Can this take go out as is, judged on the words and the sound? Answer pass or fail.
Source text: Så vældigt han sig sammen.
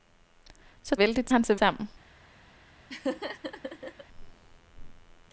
fail